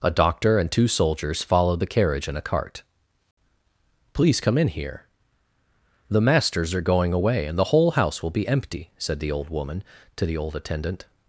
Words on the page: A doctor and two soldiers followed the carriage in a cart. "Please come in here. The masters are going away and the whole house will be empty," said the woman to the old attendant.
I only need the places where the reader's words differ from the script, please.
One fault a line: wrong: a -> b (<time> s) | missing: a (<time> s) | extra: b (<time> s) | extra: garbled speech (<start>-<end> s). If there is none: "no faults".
extra: old (9.3 s)